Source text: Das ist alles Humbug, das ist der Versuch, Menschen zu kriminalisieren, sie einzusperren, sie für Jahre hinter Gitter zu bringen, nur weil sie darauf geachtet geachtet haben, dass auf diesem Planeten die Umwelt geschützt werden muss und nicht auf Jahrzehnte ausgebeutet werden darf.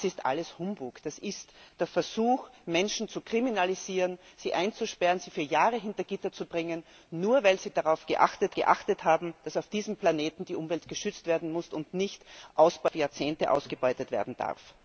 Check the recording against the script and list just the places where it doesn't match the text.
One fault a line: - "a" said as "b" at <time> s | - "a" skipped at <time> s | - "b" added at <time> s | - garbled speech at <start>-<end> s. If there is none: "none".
none